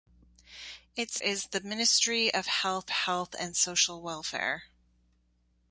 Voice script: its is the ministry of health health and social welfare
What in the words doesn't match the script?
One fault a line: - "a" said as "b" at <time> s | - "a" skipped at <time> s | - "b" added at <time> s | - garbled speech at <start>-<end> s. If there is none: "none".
none